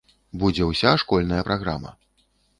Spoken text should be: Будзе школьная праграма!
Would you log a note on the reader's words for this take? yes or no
yes